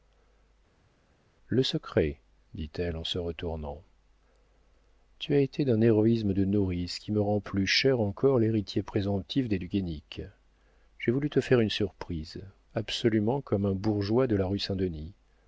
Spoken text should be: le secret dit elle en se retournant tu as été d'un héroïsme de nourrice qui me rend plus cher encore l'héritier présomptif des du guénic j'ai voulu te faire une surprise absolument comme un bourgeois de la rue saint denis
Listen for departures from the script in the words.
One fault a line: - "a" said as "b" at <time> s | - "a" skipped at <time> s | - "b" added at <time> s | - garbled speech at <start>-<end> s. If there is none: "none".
none